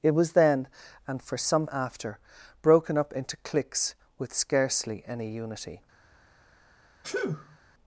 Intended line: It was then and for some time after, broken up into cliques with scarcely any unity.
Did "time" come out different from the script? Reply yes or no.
yes